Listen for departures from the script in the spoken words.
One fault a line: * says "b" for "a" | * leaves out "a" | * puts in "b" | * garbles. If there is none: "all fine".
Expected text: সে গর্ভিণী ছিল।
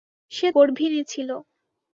all fine